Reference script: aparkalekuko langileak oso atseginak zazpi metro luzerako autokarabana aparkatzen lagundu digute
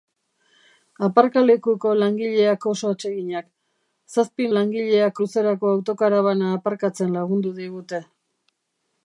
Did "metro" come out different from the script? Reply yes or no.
yes